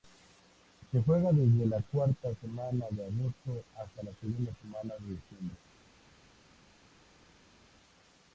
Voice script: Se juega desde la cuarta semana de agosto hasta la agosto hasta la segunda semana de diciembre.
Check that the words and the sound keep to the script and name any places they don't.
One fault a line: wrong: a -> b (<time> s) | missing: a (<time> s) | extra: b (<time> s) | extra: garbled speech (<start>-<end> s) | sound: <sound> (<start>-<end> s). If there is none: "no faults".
missing: agosto hasta la (4.1 s)